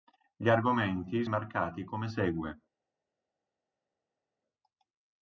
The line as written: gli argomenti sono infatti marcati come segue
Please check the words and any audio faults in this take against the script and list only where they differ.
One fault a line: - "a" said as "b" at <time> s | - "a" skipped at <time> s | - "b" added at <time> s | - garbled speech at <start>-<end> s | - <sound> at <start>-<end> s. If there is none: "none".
- "sono infatti" skipped at 1.2 s